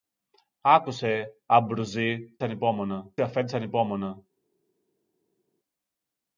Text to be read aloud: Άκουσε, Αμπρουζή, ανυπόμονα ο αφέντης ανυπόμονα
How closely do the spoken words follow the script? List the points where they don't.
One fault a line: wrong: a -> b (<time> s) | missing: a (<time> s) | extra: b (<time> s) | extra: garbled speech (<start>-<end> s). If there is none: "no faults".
no faults